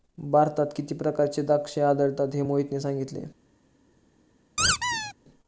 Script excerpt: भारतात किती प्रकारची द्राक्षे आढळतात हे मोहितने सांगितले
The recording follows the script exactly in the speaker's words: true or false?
true